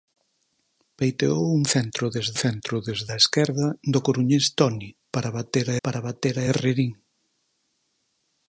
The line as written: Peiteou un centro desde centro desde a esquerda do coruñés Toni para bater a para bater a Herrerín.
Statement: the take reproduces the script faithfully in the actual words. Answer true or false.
true